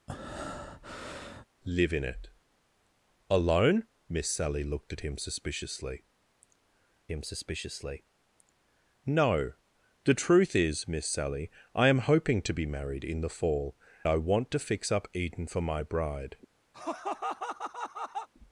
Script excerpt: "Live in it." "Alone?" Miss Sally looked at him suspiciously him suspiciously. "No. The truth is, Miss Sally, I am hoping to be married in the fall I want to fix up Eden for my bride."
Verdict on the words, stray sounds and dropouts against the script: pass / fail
fail